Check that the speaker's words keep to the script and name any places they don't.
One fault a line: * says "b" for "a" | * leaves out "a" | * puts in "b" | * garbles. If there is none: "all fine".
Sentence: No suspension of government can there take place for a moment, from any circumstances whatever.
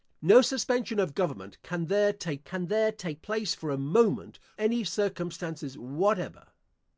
* puts in "can there take"
* leaves out "from"